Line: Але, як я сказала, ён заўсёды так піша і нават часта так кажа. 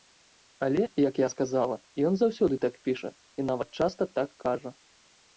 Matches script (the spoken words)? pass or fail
pass